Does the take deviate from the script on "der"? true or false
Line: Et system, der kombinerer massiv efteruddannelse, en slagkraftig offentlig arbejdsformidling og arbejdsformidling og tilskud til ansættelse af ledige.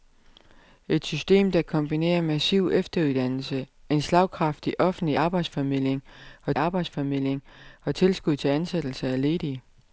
false